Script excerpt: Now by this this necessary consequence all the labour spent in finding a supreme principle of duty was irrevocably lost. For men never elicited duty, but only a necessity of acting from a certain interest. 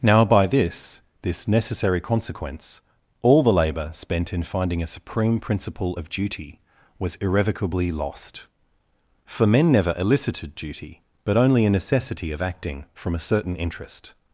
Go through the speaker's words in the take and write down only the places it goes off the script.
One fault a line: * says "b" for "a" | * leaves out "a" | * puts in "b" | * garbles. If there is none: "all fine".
all fine